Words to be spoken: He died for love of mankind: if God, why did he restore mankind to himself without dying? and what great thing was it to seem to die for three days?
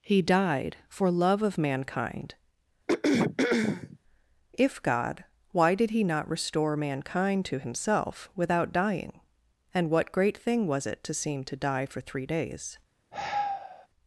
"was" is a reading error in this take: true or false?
false